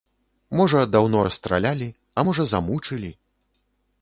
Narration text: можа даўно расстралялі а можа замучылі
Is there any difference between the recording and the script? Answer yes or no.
no